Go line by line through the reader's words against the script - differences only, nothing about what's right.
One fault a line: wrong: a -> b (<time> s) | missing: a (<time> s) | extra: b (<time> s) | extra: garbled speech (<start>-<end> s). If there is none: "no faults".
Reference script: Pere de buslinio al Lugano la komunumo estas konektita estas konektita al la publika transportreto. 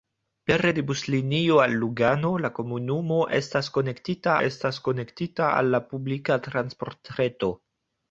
no faults